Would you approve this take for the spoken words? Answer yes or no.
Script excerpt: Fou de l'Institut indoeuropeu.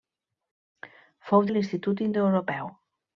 yes